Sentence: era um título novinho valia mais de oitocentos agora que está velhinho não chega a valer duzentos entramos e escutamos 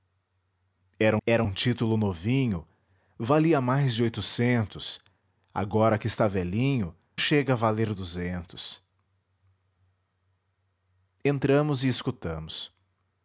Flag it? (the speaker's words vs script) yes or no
yes